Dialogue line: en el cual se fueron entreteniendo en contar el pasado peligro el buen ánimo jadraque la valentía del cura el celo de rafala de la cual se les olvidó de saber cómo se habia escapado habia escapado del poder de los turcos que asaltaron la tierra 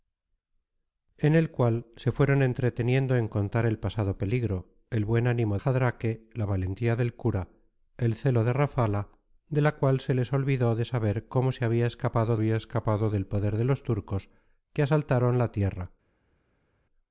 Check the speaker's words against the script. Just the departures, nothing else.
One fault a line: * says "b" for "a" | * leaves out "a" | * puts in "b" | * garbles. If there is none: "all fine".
all fine